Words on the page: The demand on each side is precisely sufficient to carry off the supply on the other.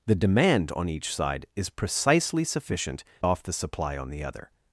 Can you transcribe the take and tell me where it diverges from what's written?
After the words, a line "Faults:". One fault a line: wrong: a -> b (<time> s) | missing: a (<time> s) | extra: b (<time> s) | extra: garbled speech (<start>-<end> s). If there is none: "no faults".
The demand on each side is precisely sufficient off the supply on the other.
Faults:
missing: to carry (3.0 s)